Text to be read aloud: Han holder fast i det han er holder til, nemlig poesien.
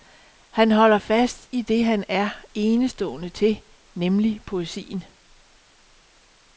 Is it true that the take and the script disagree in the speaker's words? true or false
true